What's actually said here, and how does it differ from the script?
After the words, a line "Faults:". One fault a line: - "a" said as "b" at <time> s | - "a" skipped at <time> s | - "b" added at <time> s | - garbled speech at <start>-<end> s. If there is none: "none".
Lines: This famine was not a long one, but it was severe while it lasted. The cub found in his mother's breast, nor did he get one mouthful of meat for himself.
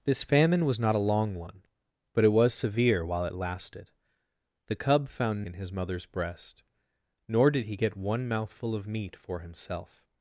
This famine was not a long one, but it was severe while it lasted. The cub found in his mother's breast, nor did he get one mouthful of meat for himself.
Faults:
none